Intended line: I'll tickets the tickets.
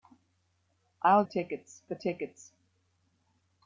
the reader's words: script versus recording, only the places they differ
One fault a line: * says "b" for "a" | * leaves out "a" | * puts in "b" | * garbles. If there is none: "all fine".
all fine